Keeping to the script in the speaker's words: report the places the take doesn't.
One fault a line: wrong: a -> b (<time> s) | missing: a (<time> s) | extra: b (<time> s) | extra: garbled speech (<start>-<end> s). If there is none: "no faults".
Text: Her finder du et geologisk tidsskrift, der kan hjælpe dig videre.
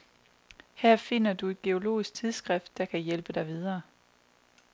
no faults